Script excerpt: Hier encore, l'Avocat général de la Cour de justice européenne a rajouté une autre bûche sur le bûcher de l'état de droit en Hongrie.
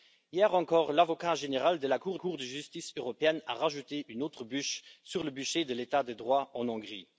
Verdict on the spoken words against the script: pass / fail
fail